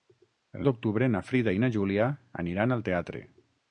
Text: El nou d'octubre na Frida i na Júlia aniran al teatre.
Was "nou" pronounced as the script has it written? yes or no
no